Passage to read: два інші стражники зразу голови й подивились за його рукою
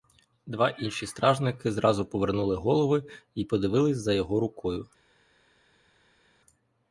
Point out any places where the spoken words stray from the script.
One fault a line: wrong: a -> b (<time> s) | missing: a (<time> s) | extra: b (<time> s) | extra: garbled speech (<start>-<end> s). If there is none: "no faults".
extra: повернули (2.0 s)